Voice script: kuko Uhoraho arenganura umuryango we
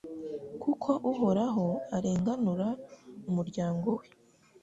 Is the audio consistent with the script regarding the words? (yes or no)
yes